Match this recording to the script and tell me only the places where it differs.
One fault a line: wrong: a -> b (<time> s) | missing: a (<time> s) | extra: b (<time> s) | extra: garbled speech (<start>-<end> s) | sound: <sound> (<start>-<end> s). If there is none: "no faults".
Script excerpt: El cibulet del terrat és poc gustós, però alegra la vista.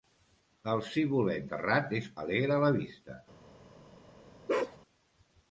missing: del (1.4 s)
missing: poc gustós però (2.1 s)
sound: bark (4.5-4.8 s)